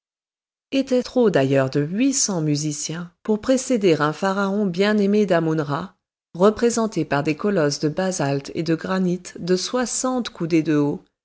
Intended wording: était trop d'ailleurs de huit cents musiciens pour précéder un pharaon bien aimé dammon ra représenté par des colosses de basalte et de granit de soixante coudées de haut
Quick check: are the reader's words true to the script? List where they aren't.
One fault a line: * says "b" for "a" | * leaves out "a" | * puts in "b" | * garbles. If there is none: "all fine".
all fine